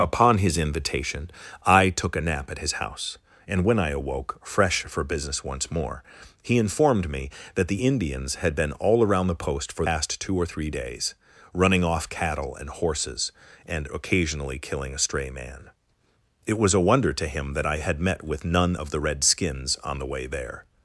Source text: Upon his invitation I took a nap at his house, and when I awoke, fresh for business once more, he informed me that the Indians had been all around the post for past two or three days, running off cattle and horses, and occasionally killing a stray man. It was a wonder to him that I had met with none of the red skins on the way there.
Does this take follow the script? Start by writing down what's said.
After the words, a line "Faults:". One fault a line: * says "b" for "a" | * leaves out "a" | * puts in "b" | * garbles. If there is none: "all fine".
Upon his invitation I took a nap at his house, and when I awoke, fresh for business once more, he informed me that the Indians had been all around the post for past two or three days, running off cattle and horses, and occasionally killing a stray man. It was a wonder to him that I had met with none of the red skins on the way there.
Faults:
all fine